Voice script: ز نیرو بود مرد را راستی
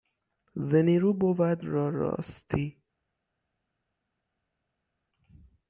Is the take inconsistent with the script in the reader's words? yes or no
yes